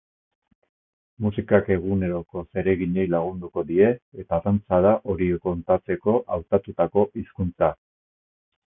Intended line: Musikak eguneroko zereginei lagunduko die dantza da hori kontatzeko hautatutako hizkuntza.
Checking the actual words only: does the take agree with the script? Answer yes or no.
no